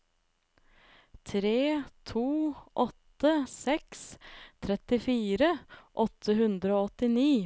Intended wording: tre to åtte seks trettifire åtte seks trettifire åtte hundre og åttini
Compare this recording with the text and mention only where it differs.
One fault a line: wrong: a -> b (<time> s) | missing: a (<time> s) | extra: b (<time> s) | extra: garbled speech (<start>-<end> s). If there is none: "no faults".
missing: seks trettifire åtte (6.3 s)